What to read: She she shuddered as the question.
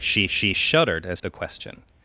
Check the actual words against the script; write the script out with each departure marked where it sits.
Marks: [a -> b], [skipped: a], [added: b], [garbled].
She she shuddered as the question.